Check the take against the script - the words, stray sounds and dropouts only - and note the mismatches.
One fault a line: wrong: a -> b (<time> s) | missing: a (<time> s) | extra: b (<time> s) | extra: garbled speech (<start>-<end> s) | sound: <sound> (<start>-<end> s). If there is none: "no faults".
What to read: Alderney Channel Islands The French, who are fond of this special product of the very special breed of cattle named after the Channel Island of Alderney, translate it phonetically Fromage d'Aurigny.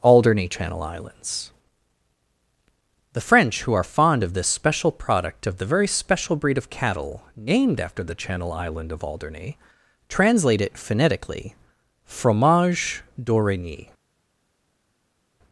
no faults